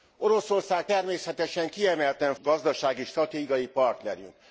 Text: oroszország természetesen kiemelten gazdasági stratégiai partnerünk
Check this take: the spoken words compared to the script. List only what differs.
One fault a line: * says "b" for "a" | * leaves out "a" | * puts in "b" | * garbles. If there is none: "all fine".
all fine